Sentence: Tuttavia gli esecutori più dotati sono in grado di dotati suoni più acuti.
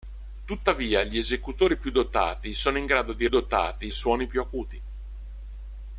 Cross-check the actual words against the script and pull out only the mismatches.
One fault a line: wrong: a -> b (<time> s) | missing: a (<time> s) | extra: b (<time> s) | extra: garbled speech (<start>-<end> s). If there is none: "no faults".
no faults